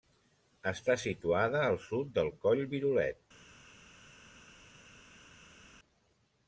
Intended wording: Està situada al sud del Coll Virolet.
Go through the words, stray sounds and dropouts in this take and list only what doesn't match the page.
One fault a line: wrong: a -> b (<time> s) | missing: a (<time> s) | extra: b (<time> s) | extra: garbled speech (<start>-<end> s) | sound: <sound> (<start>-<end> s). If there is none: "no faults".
no faults